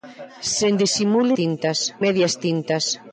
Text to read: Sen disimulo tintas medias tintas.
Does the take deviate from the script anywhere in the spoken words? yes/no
no